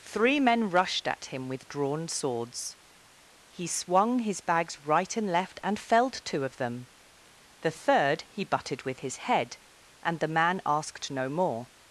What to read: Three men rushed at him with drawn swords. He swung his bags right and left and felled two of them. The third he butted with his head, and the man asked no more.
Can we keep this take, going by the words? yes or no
yes